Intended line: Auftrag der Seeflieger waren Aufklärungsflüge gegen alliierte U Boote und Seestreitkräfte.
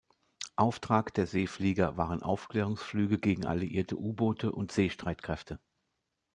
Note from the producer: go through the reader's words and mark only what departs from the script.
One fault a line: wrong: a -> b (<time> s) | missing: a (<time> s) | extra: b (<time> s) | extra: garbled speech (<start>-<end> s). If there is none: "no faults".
no faults